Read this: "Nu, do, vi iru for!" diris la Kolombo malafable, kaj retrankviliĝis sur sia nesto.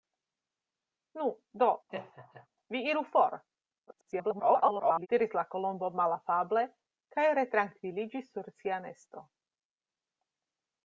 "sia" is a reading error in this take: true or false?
false